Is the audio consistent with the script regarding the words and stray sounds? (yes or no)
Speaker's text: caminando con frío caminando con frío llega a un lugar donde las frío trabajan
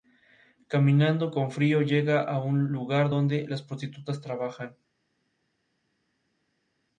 no